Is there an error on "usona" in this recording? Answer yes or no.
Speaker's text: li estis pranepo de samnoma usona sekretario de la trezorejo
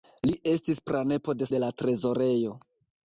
yes